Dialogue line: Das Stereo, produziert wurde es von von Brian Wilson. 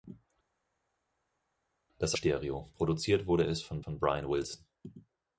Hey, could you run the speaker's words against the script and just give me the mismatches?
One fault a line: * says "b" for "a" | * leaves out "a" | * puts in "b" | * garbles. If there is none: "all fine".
all fine